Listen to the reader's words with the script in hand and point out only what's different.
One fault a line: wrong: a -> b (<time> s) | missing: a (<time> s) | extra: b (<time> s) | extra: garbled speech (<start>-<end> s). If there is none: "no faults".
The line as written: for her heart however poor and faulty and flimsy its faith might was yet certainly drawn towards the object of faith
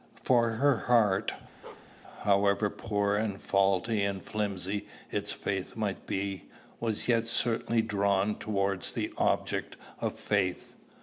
extra: be (6.1 s)